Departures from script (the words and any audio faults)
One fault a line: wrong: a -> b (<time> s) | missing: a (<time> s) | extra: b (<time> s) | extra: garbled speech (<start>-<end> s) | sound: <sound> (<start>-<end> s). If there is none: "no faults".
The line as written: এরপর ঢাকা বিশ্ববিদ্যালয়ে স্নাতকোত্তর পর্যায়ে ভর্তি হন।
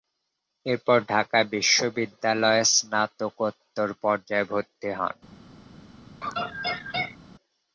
sound: laugh (6.2-7.2 s)